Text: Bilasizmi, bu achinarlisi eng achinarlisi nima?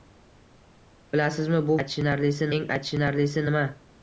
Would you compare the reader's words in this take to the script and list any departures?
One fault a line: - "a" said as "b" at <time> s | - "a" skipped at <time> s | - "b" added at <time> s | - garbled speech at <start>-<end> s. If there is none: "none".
none